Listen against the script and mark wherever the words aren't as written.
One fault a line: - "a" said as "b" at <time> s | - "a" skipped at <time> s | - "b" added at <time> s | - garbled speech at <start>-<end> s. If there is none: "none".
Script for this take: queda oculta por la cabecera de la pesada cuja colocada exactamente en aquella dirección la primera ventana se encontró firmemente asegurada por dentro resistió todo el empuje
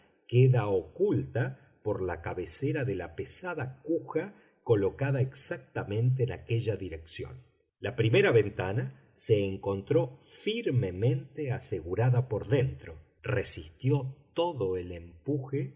none